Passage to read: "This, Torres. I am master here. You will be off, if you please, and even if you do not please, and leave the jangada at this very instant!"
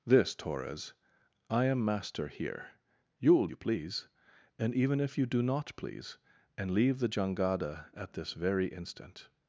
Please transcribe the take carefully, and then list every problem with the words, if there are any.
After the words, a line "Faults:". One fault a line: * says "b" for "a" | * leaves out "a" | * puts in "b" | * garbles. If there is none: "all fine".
"This, Torres. I am master here. You will you please, and even if you do not please, and leave the jangada at this very instant!"
Faults:
* leaves out "be off if"